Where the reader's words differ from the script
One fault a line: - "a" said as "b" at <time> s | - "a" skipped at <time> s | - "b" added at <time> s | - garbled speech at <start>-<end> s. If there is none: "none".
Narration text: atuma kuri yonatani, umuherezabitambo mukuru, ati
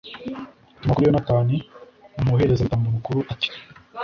none